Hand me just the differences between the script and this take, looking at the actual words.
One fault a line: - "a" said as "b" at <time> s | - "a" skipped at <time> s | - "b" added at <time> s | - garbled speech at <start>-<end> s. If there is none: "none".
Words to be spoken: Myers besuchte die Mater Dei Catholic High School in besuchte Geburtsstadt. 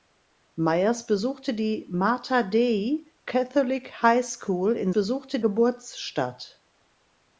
none